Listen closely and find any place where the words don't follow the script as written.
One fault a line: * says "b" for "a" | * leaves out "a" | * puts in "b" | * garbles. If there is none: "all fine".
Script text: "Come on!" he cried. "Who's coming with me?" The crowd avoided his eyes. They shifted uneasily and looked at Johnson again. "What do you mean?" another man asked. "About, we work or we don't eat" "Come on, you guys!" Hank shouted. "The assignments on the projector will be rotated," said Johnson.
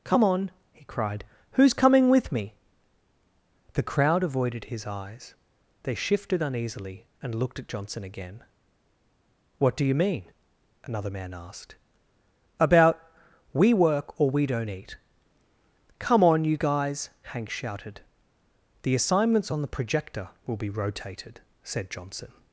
all fine